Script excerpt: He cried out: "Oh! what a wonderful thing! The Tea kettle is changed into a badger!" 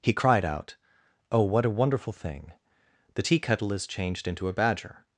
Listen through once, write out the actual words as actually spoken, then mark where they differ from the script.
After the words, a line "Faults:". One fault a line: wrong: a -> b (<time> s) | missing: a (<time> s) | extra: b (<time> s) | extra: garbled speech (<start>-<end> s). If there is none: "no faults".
He cried out: "Oh! what a wonderful thing! The Tea kettle is changed into a badger!"
Faults:
no faults